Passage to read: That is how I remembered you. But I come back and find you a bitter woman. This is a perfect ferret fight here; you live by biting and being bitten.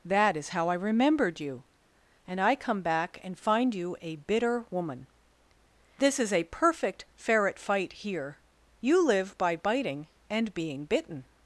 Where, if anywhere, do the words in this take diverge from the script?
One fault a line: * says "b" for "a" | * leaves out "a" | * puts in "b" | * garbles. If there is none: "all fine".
* says "And" for "But"